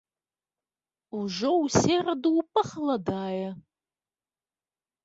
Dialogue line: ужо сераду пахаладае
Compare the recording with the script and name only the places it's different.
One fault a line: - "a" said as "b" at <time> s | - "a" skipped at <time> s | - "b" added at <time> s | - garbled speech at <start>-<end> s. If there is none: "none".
- "ў" added at 1.6 s